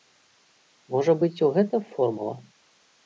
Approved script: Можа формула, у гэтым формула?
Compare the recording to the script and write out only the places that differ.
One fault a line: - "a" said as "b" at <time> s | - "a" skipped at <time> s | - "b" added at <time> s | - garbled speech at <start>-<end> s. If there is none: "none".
- "формула" said as "быць" at 1.2 s